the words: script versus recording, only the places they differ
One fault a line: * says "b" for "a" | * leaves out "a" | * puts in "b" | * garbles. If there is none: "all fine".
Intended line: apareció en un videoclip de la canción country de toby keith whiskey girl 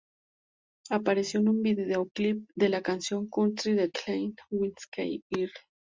* leaves out "toby"